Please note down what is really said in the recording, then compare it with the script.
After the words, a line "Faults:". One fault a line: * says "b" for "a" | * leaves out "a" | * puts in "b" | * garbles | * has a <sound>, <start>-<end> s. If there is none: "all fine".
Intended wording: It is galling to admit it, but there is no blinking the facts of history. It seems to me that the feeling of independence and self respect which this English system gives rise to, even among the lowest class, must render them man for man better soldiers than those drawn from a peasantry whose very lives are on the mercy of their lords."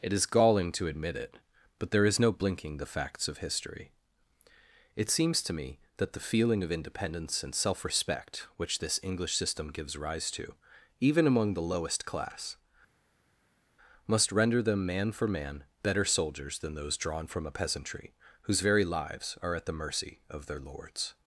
It is galling to admit it, but there is no blinking the facts of history. It seems to me that the feeling of independence and self respect which this English system gives rise to, even among the lowest class, must render them man for man better soldiers than those drawn from a peasantry whose very lives are at the mercy of their lords."
Faults:
* says "at" for "on"